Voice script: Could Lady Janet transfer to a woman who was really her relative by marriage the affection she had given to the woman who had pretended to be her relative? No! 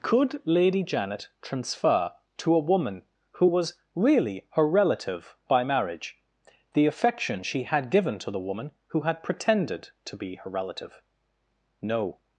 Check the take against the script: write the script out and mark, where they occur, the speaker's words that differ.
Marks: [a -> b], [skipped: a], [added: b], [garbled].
Could Lady Janet transfer to a woman who was really her relative by marriage the affection she had given to the woman who had pretended to be her relative? No!